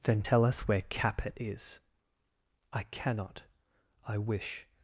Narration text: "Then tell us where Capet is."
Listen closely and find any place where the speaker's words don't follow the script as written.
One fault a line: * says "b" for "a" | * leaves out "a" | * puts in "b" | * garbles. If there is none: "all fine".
* puts in "I cannot I wish"